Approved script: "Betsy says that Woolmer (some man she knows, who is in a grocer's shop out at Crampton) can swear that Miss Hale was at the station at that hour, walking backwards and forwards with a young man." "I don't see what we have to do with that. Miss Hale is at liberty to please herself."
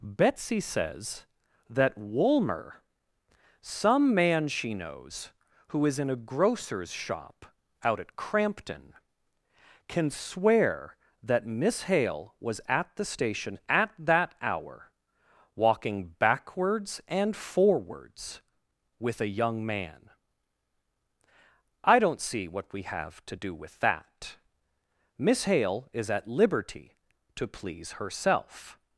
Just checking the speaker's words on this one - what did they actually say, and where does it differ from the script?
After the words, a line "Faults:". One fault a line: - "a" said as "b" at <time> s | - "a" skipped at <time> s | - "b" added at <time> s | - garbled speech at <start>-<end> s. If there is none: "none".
"Betsy says that Woolmer (some man she knows, who is in a grocer's shop out at Crampton) can swear that Miss Hale was at the station at that hour, walking backwards and forwards with a young man." "I don't see what we have to do with that. Miss Hale is at liberty to please herself."
Faults:
none